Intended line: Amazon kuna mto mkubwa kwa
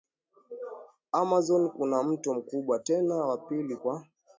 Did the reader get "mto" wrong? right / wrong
right